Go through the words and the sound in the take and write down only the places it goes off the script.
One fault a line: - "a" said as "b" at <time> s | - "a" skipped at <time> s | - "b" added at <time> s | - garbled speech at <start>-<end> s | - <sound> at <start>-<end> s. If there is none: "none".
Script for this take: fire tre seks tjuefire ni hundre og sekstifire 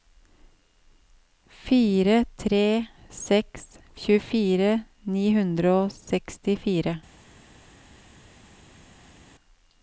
none